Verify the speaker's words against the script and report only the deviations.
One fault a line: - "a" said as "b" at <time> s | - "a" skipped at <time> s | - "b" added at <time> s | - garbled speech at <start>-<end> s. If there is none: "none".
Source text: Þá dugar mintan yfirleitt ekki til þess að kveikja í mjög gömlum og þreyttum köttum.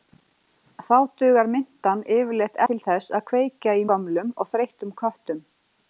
- "ekki" skipped at 2.6 s
- "mjög" skipped at 3.9 s